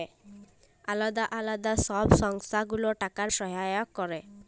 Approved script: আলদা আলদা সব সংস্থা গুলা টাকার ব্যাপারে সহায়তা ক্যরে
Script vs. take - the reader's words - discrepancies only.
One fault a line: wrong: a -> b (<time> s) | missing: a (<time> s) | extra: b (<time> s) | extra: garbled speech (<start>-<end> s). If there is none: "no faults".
missing: ব্যাপারে (3.3 s)